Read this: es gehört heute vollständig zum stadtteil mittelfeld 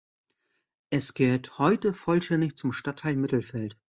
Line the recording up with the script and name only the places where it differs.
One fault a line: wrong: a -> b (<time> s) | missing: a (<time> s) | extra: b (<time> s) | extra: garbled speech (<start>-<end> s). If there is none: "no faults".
no faults